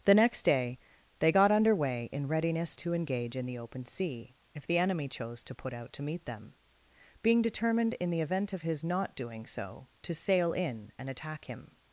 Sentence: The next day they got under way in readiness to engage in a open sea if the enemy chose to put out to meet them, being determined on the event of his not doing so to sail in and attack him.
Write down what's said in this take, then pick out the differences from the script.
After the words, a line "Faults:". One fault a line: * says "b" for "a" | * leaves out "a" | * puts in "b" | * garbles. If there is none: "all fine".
The next day they got under way in readiness to engage in the open sea if the enemy chose to put out to meet them, being determined in the event of his not doing so to sail in and attack him.
Faults:
* says "the" for "a"
* says "in" for "on"